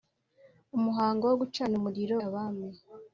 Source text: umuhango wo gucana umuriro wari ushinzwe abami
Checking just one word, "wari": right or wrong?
wrong